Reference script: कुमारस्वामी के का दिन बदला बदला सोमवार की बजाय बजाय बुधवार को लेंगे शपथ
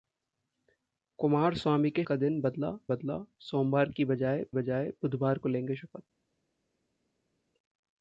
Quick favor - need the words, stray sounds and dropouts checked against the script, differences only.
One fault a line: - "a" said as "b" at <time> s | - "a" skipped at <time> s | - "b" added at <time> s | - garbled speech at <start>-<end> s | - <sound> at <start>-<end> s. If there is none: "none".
none